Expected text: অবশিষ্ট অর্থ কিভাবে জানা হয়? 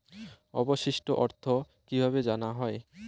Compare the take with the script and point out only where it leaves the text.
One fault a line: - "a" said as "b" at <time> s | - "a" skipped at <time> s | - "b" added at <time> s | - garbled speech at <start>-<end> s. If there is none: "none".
none